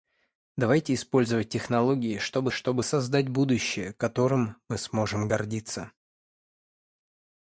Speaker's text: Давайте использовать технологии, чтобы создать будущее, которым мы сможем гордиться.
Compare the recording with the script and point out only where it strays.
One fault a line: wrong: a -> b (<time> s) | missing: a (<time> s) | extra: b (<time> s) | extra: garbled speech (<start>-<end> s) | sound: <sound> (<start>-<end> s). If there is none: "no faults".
extra: чтобы (2.5 s)